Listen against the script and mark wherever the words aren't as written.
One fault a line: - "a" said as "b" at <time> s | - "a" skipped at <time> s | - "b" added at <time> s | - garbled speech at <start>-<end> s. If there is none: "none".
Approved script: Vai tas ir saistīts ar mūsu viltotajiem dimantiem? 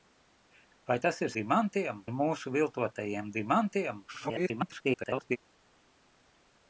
- "saistīts" said as "dimantiem" at 1.3 s
- garbled speech at 4.1-5.4 s